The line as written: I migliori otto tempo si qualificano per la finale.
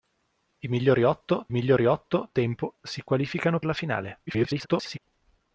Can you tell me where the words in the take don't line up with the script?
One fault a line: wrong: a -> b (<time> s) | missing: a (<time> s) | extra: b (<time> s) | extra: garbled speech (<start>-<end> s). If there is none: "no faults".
extra: migliori otto (1.5 s)
missing: per (3.6 s)
extra: garbled speech (4.3-5.0 s)